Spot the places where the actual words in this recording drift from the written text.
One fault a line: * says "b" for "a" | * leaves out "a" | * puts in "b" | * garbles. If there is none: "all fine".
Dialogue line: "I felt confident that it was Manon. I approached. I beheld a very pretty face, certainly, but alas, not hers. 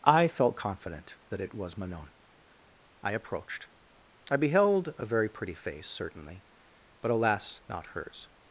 all fine